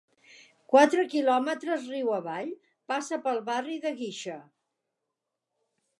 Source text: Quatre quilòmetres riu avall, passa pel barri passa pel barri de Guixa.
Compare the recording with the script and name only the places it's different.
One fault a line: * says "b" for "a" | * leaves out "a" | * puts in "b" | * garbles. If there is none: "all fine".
* leaves out "passa pel barri"